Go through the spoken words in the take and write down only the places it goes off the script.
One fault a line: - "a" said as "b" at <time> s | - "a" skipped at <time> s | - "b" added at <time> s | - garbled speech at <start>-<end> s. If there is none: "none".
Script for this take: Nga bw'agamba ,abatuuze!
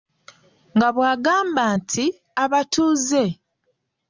- "nti" added at 1.8 s